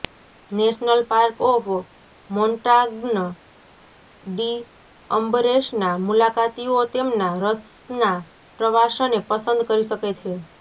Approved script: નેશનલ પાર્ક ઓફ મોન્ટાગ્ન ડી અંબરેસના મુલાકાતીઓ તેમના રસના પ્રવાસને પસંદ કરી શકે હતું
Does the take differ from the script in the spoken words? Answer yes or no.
yes